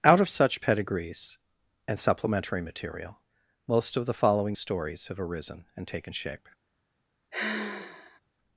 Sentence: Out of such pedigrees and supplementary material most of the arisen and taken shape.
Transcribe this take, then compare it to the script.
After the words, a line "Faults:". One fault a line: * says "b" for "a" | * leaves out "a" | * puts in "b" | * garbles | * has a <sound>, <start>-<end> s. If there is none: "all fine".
Out of such pedigrees and supplementary material most of the following stories have arisen and taken shape.
Faults:
* puts in "following stories have"
* has a sigh, 7.3-8.2 s